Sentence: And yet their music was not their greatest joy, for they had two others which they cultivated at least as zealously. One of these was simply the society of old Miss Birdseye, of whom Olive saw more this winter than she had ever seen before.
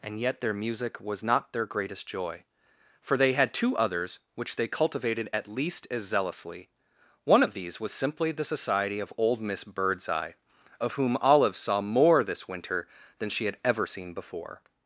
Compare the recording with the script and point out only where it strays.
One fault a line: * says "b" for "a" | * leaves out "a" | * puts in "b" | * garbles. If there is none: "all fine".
all fine